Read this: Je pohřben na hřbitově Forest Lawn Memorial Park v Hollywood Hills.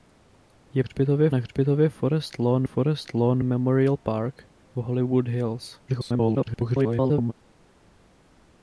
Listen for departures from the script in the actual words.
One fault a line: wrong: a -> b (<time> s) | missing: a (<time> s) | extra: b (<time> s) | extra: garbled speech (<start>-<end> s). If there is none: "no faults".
wrong: pohřben -> hřbitově (0.8 s)
extra: Forest Lawn (2.6 s)
extra: garbled speech (5.9-7.3 s)